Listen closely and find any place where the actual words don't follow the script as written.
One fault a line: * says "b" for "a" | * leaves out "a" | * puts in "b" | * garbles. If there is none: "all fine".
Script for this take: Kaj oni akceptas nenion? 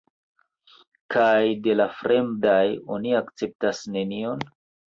* puts in "de la fremdaj"